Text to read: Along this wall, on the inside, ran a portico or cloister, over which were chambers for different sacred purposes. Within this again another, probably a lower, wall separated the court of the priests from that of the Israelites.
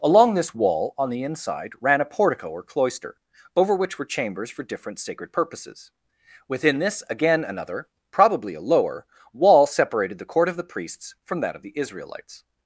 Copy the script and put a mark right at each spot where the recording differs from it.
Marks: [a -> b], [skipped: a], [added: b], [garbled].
Along this wall, on the inside, ran a portico or cloister, over which were chambers for different sacred purposes. Within this again another, probably a lower, wall separated the court of the priests from that of the Israelites.